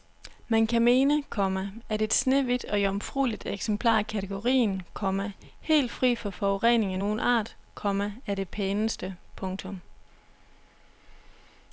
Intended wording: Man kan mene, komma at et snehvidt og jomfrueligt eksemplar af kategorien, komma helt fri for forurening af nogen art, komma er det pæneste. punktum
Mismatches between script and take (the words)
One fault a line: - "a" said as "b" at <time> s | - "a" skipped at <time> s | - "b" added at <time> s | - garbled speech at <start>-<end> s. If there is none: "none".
none